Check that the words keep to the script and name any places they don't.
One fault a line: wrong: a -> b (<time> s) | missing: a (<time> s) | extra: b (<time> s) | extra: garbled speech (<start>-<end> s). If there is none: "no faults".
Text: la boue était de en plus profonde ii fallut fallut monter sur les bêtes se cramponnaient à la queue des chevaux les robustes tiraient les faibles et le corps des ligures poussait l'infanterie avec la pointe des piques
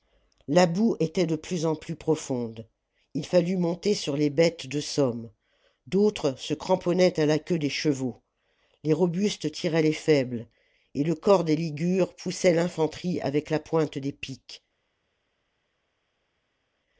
extra: plus (1.4 s)
missing: fallut (3.6 s)
extra: de somme d'autres (4.7 s)